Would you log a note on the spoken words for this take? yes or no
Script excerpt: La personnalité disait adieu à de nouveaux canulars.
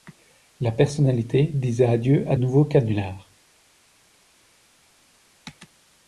yes